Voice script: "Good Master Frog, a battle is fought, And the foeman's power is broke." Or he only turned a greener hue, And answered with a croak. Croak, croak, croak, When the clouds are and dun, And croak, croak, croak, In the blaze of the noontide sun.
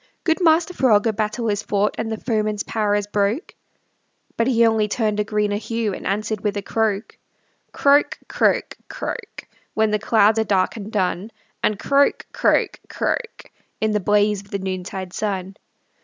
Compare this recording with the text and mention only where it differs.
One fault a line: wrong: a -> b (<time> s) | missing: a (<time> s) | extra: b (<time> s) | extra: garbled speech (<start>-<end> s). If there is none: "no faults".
wrong: Or -> But (4.3 s)
extra: dark (10.4 s)